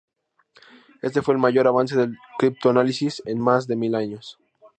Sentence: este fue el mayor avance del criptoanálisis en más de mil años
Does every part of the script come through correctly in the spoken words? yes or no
yes